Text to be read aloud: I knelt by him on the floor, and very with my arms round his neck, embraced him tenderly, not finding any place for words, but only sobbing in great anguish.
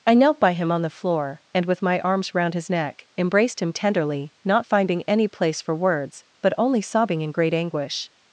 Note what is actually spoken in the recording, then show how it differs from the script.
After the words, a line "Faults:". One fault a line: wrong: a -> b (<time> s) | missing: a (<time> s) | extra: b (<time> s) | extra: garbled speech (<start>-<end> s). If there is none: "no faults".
I knelt by him on the floor, and with my arms round his neck, embraced him tenderly, not finding any place for words, but only sobbing in great anguish.
Faults:
missing: very (1.6 s)